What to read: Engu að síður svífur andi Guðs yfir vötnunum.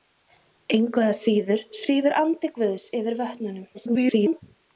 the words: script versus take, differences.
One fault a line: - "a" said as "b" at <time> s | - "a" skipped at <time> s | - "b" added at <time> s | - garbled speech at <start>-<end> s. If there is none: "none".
- garbled speech at 3.7-4.4 s